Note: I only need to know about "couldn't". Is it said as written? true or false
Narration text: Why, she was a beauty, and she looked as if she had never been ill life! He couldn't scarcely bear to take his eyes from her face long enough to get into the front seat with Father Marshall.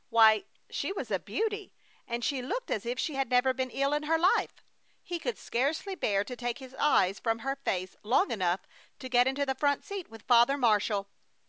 false